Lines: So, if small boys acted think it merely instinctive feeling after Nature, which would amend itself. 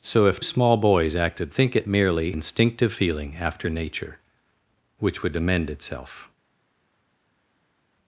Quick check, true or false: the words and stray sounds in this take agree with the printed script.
true